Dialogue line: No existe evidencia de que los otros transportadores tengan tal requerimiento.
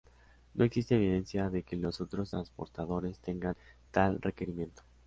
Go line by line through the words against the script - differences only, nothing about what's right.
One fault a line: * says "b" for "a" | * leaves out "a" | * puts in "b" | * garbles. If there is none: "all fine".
all fine